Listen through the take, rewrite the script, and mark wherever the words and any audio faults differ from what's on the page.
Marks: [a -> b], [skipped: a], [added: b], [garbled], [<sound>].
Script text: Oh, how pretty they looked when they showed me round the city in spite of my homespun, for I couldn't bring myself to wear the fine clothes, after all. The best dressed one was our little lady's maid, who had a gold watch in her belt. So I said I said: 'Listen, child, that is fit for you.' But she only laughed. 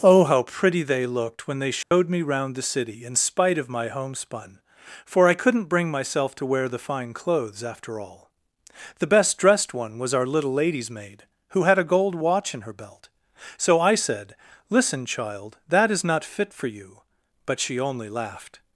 Oh, how pretty they looked when they showed [dropout] me round the city in spite of my homespun, for I couldn't bring myself to wear the fine clothes, after all. The best dressed one was our little lady's maid, who had a gold watch in her belt. So I said [skipped: I said:] 'Listen, child, that is [added: not] fit for you.' But she only laughed.